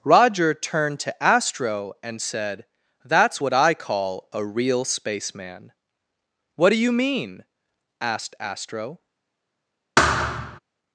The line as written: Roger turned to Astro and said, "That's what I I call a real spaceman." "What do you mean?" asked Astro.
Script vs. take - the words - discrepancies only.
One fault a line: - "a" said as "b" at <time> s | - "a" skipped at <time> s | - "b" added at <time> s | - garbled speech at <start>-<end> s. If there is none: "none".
- "I" skipped at 3.7 s